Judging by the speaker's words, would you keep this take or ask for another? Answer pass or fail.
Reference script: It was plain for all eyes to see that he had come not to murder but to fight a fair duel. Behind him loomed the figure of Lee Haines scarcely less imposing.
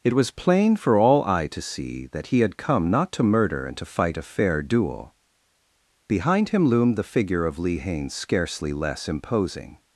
fail